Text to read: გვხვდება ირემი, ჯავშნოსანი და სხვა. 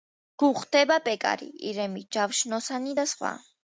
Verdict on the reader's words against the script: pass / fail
fail